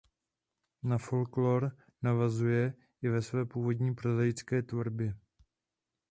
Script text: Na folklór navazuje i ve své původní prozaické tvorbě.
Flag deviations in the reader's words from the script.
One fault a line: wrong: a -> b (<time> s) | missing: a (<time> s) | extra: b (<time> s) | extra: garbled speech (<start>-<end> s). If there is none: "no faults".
no faults